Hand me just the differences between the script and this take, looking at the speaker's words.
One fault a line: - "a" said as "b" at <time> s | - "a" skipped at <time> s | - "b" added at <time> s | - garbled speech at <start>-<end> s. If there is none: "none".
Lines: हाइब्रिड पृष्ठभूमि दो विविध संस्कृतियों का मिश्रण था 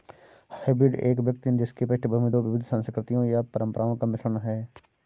- "एक व्यक्ति जिसकी" added at 1.0 s
- "या परंपराओं" added at 3.3 s
- "था" said as "है" at 4.4 s